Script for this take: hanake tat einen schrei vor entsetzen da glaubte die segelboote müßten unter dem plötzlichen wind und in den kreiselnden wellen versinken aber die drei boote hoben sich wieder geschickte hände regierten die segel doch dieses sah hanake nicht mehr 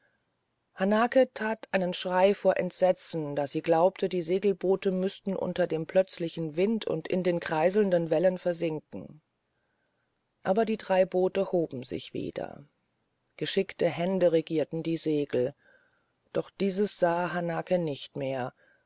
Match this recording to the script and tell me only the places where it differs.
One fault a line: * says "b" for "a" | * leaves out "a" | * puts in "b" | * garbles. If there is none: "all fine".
* puts in "sie"